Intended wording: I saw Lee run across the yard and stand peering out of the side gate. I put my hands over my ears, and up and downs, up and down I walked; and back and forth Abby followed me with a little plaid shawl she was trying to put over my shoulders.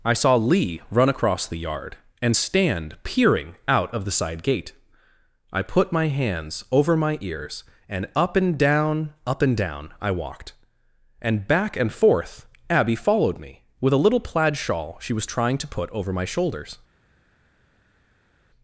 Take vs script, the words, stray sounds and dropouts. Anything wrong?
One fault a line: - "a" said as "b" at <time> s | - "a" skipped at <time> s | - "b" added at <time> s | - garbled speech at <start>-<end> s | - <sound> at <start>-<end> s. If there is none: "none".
- "downs" said as "down" at 8.6 s